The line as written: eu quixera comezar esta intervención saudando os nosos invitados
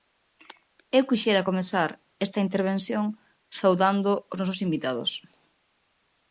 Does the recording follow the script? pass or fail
pass